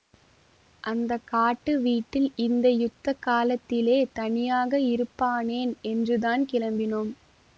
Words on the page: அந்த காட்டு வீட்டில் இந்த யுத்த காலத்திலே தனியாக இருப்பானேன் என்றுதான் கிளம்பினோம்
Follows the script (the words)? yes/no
yes